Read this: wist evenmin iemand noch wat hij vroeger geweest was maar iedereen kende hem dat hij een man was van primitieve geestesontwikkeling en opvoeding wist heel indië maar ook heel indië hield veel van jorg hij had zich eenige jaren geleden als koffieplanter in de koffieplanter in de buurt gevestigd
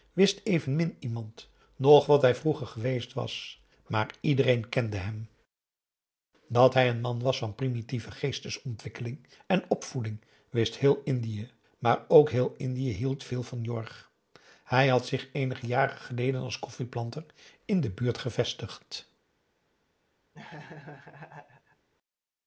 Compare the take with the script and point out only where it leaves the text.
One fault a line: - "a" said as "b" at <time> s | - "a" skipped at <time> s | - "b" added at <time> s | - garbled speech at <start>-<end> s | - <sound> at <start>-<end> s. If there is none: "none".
- "koffieplanter in de" skipped at 17.9 s
- laugh at 20.3-21.9 s